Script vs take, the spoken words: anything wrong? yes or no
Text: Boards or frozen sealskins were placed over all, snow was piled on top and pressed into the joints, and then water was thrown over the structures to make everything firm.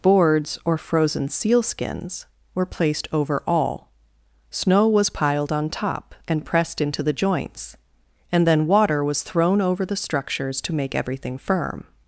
no